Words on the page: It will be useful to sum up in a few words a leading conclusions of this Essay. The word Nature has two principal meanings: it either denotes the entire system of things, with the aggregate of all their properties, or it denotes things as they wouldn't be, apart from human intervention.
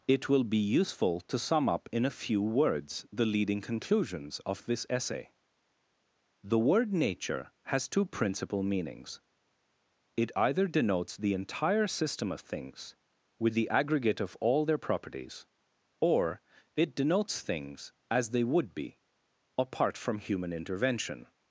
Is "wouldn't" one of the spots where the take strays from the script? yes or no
yes